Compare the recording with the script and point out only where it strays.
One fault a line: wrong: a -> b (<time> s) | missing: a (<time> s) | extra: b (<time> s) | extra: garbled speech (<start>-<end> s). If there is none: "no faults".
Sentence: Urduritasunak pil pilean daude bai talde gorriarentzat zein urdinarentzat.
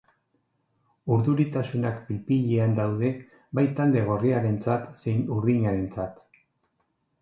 no faults